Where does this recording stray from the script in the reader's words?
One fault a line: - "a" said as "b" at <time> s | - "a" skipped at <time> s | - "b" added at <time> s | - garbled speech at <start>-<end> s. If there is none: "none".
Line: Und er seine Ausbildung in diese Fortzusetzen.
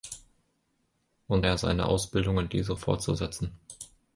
none